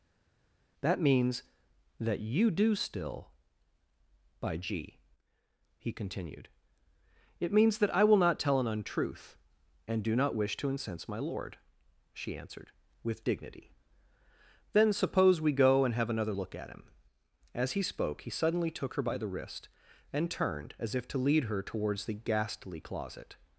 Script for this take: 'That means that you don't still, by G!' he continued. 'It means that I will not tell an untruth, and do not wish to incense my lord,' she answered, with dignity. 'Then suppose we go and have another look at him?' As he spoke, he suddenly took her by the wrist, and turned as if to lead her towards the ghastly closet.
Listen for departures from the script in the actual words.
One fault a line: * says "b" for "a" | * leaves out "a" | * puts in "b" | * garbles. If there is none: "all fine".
* says "do" for "don't"